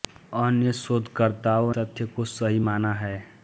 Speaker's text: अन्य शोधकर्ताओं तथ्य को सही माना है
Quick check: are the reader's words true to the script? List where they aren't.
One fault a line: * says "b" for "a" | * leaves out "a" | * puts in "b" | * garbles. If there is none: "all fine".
all fine